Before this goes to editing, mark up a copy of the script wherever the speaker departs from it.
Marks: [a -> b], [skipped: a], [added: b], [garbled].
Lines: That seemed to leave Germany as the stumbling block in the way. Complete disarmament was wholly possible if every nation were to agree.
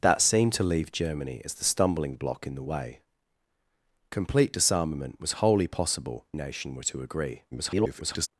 That seemed to leave Germany as the stumbling block in the way. Complete disarmament was wholly possible [skipped: if every] nation were to agree. [garbled]